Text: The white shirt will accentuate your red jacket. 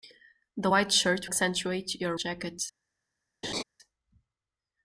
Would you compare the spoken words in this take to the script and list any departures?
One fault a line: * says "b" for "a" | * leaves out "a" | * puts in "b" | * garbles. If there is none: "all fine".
* leaves out "will"
* leaves out "red"